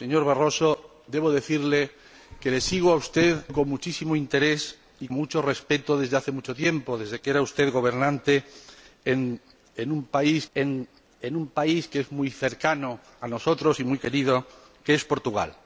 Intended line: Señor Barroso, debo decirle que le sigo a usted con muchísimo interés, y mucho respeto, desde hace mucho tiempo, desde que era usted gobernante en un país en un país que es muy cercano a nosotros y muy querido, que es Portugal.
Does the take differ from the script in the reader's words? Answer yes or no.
no